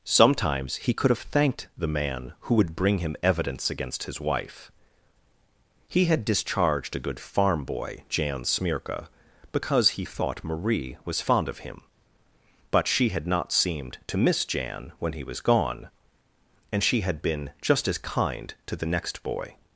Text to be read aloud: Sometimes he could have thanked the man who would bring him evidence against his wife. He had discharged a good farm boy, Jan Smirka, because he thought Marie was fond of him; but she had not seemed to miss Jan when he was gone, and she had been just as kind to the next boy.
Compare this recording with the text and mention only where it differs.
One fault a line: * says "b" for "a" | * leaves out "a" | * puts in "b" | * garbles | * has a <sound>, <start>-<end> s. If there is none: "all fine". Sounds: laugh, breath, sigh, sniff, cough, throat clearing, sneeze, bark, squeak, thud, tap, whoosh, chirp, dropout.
all fine